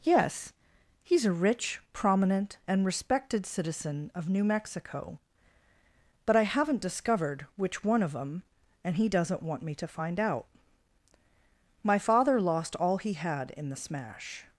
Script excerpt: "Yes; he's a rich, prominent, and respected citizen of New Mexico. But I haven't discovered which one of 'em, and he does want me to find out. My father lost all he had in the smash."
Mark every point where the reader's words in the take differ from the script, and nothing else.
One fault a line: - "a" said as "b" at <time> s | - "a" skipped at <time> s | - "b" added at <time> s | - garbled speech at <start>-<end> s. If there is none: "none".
- "does" said as "doesn't" at 9.1 s